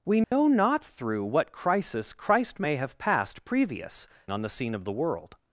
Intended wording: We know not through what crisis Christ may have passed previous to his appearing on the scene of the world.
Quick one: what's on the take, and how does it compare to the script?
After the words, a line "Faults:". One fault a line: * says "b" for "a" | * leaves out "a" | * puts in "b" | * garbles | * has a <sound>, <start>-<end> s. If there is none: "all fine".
We know not through what crisis Christ may have passed previous on the scene of the world.
Faults:
* has a dropout, 0.2-0.3 s
* leaves out "to his appearing"